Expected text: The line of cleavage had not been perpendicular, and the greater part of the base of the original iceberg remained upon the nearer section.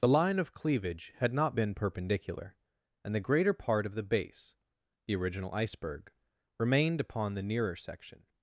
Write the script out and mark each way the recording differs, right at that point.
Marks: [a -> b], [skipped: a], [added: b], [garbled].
The line of cleavage had not been perpendicular, and the greater part of the base [skipped: of] the original iceberg remained upon the nearer section.